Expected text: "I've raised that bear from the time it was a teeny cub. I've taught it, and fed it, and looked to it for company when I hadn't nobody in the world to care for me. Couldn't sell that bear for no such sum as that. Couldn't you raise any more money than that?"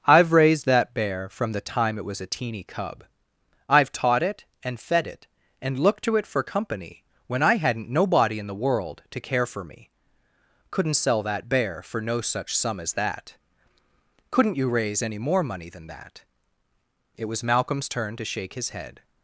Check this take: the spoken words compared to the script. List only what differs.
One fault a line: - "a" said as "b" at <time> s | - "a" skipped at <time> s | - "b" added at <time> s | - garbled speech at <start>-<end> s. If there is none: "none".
- "It was Malcolm's turn to shake his head" added at 17.2 s